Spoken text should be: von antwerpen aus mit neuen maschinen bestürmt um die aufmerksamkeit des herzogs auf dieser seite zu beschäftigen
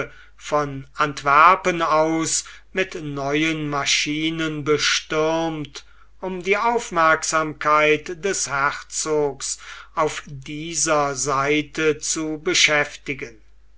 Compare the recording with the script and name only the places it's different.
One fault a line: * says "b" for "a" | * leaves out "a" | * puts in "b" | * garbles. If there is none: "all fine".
all fine